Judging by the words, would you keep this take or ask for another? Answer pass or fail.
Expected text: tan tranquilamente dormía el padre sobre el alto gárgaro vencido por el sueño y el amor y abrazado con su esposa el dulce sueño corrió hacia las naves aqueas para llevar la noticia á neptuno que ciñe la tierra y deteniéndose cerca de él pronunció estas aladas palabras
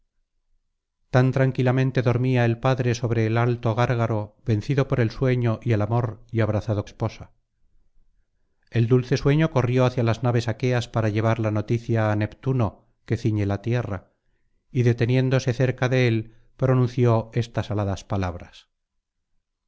fail